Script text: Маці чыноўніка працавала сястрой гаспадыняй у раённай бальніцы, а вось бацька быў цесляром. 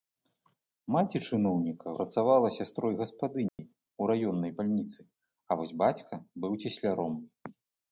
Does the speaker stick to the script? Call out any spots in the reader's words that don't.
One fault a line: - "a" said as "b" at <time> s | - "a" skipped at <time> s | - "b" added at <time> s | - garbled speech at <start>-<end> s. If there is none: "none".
none